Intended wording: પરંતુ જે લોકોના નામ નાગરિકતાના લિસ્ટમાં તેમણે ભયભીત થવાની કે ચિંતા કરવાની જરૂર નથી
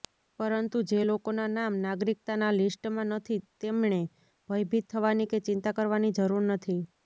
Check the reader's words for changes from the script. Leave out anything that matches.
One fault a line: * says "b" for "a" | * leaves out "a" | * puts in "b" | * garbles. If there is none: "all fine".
* puts in "નથી"